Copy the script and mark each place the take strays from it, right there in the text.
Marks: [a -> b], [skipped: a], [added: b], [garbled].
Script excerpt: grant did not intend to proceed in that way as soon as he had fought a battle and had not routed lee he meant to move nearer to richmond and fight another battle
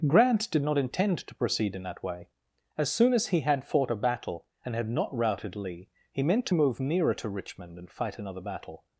grant did not intend to proceed in that way as soon as he had fought a battle and had not routed lee he meant to move nearer to richmond and fight another battle